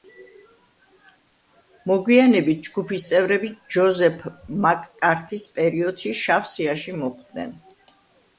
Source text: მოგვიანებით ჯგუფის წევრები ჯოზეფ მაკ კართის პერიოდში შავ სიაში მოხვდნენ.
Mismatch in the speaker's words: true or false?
false